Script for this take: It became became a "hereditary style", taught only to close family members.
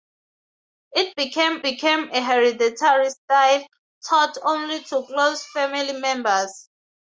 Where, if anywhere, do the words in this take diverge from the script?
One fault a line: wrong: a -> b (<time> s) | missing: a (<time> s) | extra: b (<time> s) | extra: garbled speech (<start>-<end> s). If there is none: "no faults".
no faults